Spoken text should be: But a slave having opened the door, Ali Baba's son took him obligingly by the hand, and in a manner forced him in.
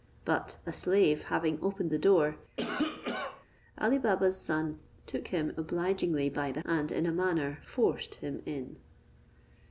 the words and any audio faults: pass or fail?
fail